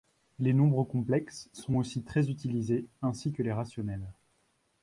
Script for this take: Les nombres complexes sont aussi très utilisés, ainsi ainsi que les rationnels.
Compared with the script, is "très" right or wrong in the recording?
right